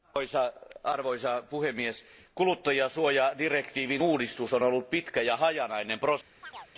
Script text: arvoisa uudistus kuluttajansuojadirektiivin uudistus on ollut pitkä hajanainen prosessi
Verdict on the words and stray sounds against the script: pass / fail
fail